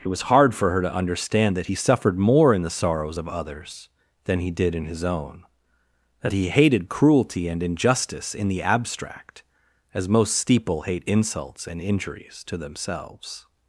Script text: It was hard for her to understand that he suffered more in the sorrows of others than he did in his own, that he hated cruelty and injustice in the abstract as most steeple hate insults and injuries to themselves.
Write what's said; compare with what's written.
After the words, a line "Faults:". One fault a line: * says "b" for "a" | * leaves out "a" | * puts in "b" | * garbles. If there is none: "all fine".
It was hard for her to understand that he suffered more in the sorrows of others than he did in his own, that he hated cruelty and injustice in the abstract as most steeple hate insults and injuries to themselves.
Faults:
all fine